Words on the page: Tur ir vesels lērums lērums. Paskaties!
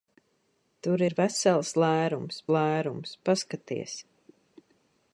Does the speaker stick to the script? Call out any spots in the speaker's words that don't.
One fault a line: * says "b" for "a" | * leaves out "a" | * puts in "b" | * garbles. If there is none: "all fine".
all fine